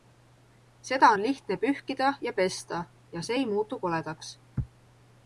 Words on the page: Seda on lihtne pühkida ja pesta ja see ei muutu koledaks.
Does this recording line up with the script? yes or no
yes